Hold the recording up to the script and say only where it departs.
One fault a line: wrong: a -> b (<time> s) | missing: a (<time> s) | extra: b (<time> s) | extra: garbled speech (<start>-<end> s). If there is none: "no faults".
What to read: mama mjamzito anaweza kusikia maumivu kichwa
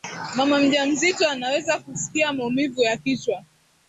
extra: ya (2.8 s)